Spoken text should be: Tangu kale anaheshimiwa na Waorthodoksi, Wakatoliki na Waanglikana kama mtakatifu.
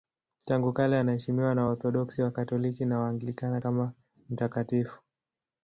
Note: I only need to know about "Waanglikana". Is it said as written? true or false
true